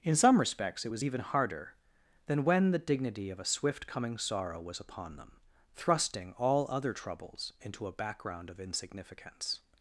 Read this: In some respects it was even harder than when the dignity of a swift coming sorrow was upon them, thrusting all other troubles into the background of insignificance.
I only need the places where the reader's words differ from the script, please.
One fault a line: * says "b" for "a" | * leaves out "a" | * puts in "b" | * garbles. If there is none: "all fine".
* says "a" for "the"